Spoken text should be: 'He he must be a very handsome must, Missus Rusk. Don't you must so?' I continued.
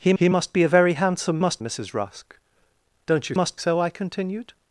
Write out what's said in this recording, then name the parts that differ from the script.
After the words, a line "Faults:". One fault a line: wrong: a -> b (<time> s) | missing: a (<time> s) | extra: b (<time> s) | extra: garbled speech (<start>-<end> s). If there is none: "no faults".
'He he must be a very handsome must, Missus Rusk. Don't you must so?' I continued.
Faults:
no faults